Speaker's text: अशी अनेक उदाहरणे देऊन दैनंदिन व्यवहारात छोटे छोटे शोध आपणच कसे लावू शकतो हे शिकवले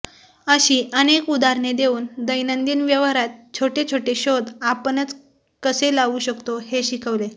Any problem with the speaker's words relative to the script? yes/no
no